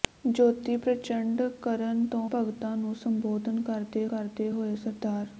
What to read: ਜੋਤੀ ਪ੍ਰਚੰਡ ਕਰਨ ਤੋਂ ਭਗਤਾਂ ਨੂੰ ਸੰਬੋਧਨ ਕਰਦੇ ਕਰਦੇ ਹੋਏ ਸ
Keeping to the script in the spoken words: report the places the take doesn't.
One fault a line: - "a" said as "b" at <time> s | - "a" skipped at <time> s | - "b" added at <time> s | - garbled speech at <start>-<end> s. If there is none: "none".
none